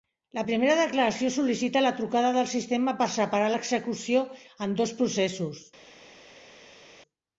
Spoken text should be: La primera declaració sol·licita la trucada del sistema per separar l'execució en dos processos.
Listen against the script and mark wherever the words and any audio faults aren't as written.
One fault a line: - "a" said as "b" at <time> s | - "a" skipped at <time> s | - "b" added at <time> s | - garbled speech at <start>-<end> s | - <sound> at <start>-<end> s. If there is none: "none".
none